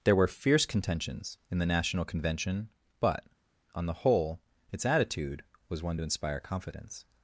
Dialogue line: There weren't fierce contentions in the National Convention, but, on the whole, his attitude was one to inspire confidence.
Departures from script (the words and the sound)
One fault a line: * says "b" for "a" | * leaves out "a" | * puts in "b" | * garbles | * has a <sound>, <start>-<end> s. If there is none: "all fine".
* says "were" for "weren't"
* says "its" for "his"